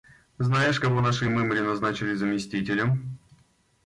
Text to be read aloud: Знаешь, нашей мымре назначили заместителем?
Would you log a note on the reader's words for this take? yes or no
yes